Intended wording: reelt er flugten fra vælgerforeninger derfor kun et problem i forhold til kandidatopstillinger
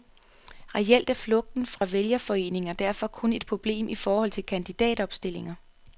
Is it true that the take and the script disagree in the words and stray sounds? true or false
true